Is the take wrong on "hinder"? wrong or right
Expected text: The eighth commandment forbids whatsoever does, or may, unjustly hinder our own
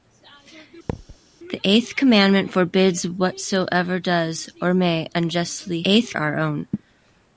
wrong